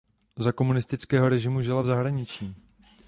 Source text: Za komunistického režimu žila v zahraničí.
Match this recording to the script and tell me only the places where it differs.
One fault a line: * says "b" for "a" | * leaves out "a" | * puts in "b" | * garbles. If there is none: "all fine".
all fine